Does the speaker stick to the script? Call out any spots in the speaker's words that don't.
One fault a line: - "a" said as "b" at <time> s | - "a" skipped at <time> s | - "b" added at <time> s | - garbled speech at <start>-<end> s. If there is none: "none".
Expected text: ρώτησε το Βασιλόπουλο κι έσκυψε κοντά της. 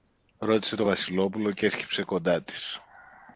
none